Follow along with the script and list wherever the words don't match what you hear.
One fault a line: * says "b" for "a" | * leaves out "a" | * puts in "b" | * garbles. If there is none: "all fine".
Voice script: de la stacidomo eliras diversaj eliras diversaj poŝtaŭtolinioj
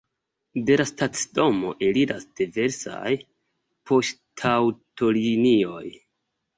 * leaves out "eliras diversaj"